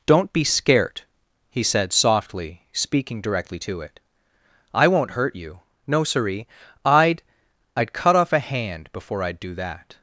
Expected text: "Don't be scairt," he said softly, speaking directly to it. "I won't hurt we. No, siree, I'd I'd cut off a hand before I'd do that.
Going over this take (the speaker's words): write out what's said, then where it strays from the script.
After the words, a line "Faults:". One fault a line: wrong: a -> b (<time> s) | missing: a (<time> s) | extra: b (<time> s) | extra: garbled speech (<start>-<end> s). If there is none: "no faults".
"Don't be scairt," he said softly, speaking directly to it. "I won't hurt you. No, siree, I'd I'd cut off a hand before I'd do that.
Faults:
wrong: we -> you (5.3 s)